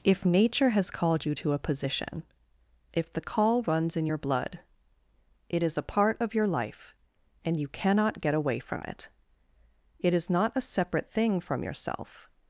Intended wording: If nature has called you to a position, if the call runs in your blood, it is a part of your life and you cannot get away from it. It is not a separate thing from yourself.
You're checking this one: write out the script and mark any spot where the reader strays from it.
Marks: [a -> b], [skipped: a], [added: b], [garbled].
If nature has called you to a position, if the call runs in your blood, it is a part of your life and you cannot get away from it. It is not a separate thing from yourself.